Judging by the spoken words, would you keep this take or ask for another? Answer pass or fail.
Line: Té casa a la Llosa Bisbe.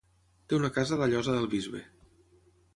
fail